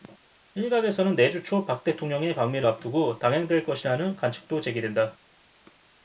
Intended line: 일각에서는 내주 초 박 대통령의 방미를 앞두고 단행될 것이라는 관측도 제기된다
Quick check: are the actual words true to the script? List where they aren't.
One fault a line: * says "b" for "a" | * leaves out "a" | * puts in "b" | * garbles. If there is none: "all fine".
all fine